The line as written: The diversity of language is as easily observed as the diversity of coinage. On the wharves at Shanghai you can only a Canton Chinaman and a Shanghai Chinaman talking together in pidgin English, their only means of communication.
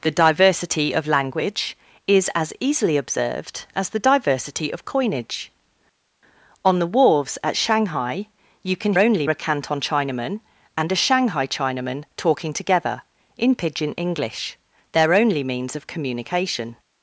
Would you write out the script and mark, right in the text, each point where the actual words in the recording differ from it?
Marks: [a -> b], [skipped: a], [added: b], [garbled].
The diversity of language is as easily observed as the diversity of coinage. On the wharves at Shanghai you can only a Canton Chinaman and a Shanghai Chinaman talking together in pidgin English, their only means of communication.